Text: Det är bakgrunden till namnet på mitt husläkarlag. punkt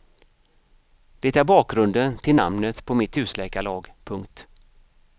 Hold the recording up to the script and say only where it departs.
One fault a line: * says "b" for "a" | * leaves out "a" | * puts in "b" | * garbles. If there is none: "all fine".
all fine